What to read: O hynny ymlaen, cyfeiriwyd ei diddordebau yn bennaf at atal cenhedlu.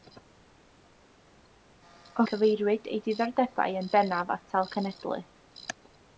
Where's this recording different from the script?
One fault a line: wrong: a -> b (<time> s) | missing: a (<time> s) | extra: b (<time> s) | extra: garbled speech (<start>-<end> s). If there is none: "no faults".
missing: hynny ymlaen (2.2 s)
missing: at (4.3 s)